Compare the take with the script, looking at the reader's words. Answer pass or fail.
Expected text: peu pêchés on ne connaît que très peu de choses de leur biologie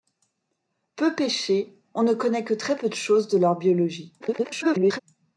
fail